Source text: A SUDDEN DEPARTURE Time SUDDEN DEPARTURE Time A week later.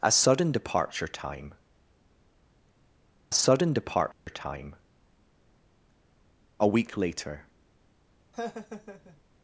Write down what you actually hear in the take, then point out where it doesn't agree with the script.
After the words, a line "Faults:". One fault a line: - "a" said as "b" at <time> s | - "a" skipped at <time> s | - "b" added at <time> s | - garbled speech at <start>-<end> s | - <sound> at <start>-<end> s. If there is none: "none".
A SUDDEN DEPARTURE Time SUDDEN DEPARTURE Time A week later.
Faults:
- dropout at 4.1-4.3 s
- laugh at 8.3-9.2 s